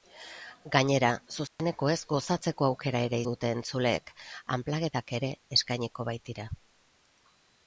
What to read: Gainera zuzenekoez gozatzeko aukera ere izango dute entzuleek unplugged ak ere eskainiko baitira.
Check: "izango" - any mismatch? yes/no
yes